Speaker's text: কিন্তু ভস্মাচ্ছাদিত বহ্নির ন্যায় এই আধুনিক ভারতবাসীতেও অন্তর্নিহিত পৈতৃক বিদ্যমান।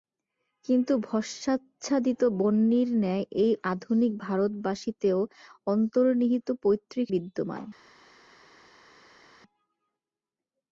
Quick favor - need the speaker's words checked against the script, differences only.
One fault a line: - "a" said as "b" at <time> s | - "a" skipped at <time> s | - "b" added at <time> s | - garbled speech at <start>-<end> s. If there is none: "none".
none